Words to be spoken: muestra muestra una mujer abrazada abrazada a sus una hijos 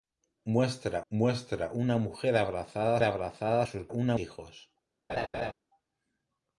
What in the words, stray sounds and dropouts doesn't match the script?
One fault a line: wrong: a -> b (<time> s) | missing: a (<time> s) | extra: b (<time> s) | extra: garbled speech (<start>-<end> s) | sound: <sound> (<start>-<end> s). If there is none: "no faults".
sound: laugh (5.1-5.5 s)